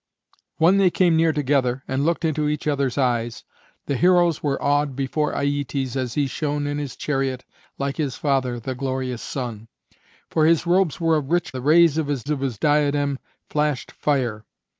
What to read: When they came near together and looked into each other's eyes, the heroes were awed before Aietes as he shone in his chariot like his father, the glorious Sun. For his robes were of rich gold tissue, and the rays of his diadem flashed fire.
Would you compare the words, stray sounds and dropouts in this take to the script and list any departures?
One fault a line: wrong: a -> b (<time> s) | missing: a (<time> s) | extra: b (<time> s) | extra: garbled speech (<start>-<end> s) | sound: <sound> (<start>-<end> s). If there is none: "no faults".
wrong: gold tissue and the rays -> the rays of his (11.6 s)